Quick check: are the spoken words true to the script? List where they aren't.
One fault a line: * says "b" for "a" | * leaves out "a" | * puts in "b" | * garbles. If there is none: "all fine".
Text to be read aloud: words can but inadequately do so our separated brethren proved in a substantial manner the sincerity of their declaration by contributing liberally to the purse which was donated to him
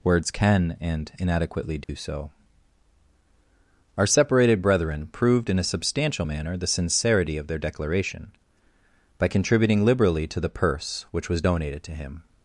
* says "and" for "but"